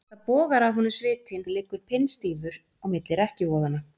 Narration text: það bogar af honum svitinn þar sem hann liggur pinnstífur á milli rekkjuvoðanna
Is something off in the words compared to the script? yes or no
yes